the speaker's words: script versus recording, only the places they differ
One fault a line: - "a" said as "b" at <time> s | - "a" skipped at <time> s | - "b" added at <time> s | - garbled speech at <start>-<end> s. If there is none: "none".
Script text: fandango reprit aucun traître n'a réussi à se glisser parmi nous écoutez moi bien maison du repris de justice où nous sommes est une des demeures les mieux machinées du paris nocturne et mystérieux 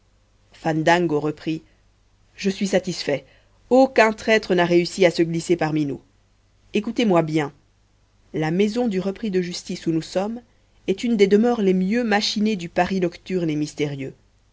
- "je suis satisfait" added at 2.4 s
- "la" added at 8.3 s